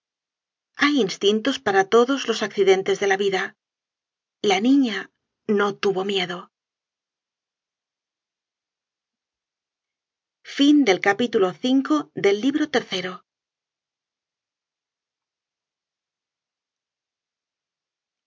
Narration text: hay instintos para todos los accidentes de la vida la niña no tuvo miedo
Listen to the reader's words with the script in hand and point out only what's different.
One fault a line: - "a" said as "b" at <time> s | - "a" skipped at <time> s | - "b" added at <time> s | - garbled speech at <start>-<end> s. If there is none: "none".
none